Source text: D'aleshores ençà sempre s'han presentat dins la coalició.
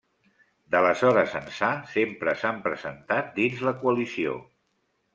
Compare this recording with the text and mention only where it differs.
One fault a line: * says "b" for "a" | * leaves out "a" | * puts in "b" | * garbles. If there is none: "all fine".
all fine